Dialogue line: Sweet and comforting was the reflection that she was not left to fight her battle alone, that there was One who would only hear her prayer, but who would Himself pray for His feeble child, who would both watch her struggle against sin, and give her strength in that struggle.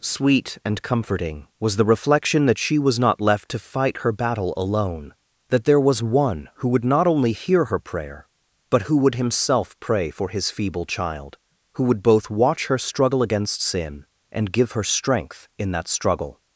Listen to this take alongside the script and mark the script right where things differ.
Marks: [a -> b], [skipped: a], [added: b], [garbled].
Sweet and comforting was the reflection that she was not left to fight her battle alone, that there was One who would [added: not] only hear her prayer, but who would Himself pray for His feeble child, who would both watch her struggle against sin, and give her strength in that struggle.